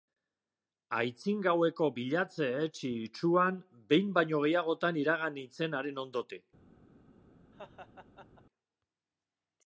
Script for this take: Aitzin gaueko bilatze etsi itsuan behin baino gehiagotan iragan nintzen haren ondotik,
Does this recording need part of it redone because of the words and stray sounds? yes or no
yes